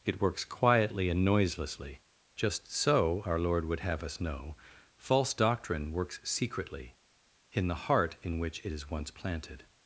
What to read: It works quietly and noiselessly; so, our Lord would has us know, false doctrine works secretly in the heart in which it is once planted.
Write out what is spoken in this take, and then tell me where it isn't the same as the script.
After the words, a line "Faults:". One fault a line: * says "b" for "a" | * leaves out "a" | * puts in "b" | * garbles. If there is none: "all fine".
It works quietly and noiselessly; just so, our Lord would have us know, false doctrine works secretly in the heart in which it is once planted.
Faults:
* puts in "just"
* says "have" for "has"